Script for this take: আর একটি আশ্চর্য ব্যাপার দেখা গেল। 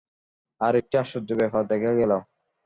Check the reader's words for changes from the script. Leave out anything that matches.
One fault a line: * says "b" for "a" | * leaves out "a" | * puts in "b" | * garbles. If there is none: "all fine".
all fine